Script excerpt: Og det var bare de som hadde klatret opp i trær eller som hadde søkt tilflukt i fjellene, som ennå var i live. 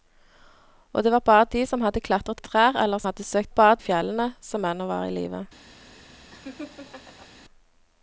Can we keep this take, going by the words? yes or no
no